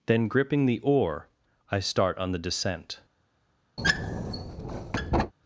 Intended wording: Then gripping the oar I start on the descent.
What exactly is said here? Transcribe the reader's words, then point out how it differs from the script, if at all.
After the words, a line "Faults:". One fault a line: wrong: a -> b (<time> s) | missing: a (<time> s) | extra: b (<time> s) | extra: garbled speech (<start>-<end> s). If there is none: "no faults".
Then gripping the oar I start on the descent.
Faults:
no faults